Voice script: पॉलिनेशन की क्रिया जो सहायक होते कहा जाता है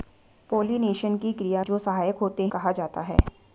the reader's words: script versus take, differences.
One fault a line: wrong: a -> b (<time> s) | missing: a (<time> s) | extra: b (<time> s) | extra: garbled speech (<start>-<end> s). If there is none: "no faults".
no faults